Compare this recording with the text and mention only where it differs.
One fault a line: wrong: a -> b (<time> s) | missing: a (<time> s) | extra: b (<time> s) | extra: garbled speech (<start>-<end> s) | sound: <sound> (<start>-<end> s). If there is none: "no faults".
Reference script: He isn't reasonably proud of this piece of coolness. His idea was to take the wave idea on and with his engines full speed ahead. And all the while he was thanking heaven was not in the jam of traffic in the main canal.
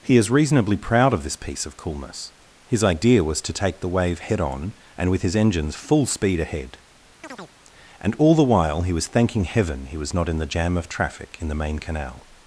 wrong: isn't -> is (0.2 s)
wrong: idea -> head (4.2 s)
sound: chirp (7.2-7.6 s)
extra: he (9.9 s)